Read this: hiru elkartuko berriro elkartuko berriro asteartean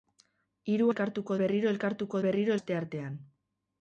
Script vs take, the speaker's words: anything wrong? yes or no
no